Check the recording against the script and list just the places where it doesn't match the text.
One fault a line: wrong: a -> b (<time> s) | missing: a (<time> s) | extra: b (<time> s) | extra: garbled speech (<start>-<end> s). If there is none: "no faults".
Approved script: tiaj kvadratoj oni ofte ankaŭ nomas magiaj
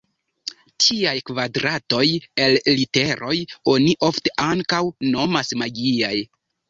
extra: el literoj (2.5 s)